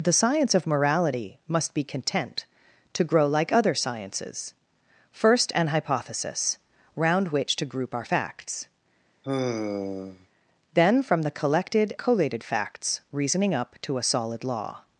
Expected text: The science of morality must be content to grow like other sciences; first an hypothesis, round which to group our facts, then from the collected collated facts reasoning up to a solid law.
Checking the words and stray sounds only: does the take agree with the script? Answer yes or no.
no